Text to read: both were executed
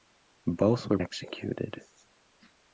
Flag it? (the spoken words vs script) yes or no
no